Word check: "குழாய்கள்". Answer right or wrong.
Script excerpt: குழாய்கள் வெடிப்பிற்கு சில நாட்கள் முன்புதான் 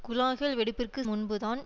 right